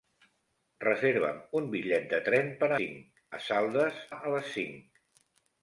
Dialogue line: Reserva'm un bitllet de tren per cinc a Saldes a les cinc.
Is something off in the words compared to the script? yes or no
no